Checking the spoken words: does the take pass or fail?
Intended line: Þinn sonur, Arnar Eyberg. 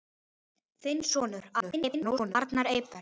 fail